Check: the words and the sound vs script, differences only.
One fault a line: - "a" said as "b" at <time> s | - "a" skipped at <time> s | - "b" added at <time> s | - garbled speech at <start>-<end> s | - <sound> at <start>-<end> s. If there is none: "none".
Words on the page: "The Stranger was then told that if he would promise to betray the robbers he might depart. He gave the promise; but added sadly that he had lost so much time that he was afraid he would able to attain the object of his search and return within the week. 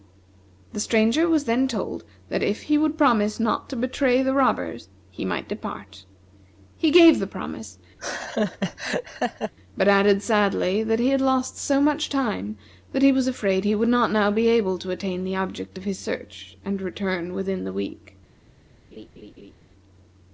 - "not" added at 3.4 s
- laugh at 8.0-9.5 s
- "not now be" added at 13.9 s
- laugh at 18.9-19.5 s